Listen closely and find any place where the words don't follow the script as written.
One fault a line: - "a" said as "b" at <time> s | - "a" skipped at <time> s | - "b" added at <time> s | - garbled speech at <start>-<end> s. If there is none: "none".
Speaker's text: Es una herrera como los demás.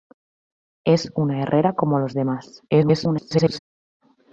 - garbled speech at 2.7-3.6 s